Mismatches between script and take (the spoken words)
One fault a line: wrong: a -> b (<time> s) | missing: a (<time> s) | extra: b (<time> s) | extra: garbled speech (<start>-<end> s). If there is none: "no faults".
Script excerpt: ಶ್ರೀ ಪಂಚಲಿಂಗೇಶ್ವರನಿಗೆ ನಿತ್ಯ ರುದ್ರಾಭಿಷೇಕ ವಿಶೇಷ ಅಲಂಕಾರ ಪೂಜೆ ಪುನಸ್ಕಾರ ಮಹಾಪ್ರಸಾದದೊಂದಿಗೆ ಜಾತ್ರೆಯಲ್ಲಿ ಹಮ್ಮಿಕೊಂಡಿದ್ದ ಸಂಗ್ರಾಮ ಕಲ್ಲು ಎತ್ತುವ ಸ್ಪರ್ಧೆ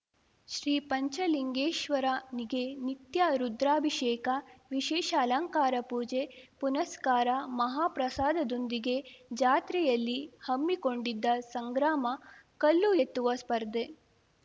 no faults